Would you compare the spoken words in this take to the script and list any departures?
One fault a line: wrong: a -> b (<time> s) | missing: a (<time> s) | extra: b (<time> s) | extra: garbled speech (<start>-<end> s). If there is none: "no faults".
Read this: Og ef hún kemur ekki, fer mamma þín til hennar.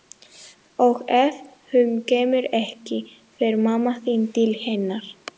no faults